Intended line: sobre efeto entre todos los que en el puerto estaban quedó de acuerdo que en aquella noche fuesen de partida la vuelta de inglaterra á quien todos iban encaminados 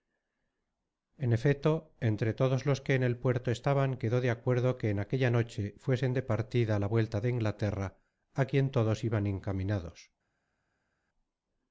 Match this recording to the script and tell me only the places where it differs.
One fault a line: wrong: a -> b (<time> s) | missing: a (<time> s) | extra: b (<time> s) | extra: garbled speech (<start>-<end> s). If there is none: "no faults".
wrong: sobre -> en (1.2 s)